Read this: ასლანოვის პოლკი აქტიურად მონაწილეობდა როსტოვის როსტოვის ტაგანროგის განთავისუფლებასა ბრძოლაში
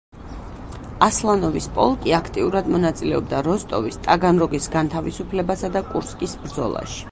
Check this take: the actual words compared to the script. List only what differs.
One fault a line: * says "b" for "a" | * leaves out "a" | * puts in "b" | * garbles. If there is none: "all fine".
* leaves out "როსტოვის"
* puts in "და კურსკის"